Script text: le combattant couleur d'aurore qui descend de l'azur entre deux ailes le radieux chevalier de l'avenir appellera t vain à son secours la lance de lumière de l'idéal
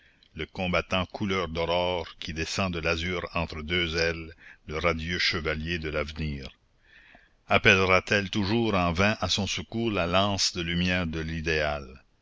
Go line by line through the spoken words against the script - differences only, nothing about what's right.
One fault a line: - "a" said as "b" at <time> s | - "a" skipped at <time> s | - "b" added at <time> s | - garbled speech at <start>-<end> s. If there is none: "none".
- "elle toujours en" added at 8.2 s